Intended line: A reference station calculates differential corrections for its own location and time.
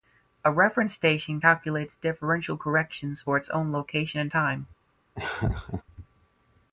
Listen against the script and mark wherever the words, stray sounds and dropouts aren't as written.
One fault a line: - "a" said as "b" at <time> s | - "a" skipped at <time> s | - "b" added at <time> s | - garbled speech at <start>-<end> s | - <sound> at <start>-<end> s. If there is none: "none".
- laugh at 5.1-5.8 s